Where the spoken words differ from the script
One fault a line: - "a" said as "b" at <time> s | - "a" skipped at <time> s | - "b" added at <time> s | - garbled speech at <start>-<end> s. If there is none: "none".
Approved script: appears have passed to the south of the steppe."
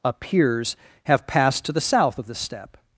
none